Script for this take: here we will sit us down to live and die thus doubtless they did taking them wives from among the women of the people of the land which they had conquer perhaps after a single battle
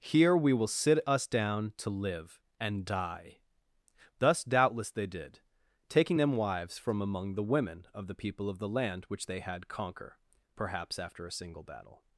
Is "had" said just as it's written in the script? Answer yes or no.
yes